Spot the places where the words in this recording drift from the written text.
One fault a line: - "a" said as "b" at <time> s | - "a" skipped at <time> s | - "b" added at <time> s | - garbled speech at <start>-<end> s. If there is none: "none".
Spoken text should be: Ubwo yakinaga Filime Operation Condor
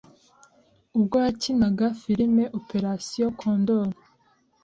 none